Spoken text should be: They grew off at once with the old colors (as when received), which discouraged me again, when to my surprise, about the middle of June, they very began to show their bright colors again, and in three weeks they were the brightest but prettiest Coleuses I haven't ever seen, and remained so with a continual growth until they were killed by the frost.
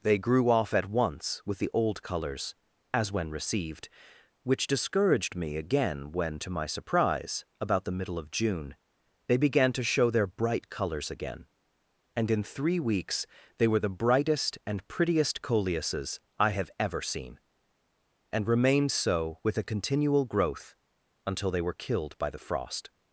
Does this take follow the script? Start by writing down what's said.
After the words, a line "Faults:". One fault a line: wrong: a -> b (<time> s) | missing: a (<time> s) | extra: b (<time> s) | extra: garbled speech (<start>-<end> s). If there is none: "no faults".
They grew off at once with the old colors (as when received), which discouraged me again, when to my surprise, about the middle of June, they began to show their bright colors again, and in three weeks they were the brightest and prettiest Coleuses I have ever seen, and remained so with a continual growth until they were killed by the frost.
Faults:
missing: very (9.4 s)
wrong: but -> and (14.6 s)
wrong: haven't -> have (16.5 s)